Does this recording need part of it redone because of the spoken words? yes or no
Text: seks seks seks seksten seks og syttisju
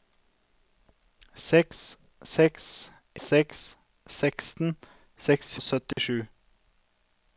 no